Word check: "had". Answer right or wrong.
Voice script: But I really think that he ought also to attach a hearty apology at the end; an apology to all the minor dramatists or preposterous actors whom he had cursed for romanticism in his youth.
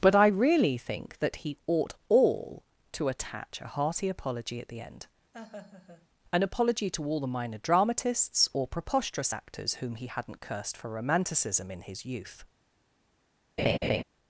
wrong